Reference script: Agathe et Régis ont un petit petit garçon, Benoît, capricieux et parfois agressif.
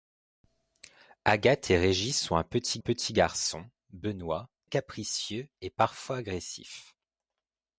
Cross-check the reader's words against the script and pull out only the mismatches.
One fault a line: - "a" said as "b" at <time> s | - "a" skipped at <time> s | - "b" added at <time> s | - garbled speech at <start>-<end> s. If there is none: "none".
none